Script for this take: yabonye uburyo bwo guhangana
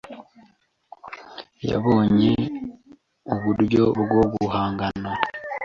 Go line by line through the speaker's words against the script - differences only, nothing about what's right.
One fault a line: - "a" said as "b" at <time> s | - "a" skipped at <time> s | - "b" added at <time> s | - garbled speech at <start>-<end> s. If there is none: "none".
none